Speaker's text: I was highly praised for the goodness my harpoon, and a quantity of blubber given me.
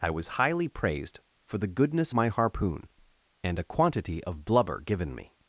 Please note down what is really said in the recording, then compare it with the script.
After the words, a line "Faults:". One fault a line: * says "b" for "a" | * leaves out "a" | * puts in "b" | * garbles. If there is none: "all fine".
I was highly praised for the goodness my harpoon, and a quantity of blubber given me.
Faults:
all fine